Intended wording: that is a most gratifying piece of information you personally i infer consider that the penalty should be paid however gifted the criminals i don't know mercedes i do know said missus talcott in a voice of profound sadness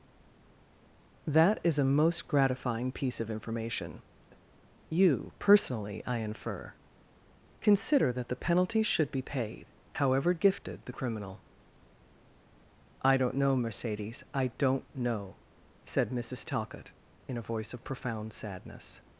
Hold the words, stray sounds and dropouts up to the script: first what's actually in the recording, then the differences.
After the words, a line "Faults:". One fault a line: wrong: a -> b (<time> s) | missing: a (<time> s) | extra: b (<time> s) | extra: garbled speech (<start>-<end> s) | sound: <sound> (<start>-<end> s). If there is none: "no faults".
that is a most gratifying piece of information you personally i infer consider that the penalty should be paid however gifted the criminal i don't know mercedes i don't know said missus talcott in a voice of profound sadness
Faults:
wrong: criminals -> criminal (10.9 s)
wrong: do -> don't (14.6 s)